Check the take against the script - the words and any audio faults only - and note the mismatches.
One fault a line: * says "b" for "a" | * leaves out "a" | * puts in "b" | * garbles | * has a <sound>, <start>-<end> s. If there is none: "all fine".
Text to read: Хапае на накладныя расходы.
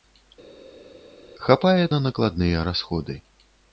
all fine